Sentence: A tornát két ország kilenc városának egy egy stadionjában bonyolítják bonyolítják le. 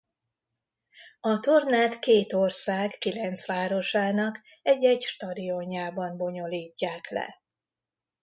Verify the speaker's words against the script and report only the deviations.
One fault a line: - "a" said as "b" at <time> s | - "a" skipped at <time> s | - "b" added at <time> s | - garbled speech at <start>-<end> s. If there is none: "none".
- "bonyolítják" skipped at 7.1 s